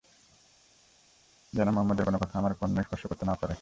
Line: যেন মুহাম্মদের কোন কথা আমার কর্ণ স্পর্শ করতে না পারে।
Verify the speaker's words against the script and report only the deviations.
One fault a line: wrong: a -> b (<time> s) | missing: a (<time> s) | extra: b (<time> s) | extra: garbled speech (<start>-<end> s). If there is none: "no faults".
no faults